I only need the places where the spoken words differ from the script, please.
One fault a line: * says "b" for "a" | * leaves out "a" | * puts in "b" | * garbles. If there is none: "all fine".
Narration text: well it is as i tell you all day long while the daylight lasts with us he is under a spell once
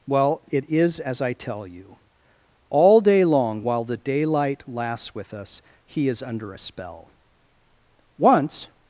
all fine